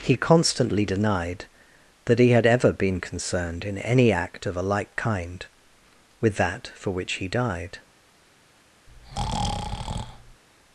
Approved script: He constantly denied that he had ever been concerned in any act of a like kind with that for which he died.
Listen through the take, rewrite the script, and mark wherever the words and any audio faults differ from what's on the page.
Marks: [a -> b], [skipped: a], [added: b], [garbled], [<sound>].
He constantly denied that he had ever been concerned in any act of a like kind with that for which he died. [breath]